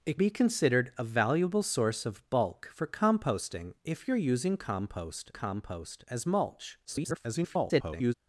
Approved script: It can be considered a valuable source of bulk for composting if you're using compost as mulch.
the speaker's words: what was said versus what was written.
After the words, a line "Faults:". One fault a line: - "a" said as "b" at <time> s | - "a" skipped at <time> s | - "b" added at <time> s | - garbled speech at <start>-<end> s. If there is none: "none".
It be considered a valuable source of bulk for composting if you're using compost compost as mulch. [garbled]
Faults:
- "can" skipped at 0.2 s
- "compost" added at 5.3 s
- garbled speech at 6.8-8.1 s